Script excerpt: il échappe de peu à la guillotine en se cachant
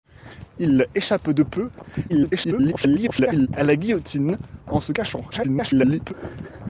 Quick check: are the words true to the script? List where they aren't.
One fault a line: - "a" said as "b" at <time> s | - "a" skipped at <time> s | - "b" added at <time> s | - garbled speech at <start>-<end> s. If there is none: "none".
- garbled speech at 2.1-3.5 s
- garbled speech at 5.3-6.1 s